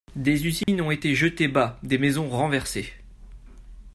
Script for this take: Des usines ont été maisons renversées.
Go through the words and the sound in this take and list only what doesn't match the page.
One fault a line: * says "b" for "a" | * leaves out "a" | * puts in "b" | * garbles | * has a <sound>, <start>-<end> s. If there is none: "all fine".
* has a dropout, 0.6-0.7 s
* puts in "jetées bas des"